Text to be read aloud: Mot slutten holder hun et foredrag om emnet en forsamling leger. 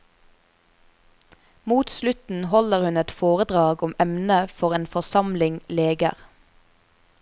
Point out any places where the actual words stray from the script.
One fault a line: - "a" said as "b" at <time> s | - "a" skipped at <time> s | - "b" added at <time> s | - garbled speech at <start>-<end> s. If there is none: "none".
- "for" added at 4.6 s